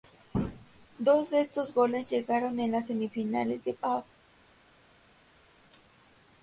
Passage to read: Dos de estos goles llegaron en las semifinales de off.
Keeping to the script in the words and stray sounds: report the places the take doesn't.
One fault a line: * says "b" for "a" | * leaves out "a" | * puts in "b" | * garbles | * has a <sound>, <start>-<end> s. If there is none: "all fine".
all fine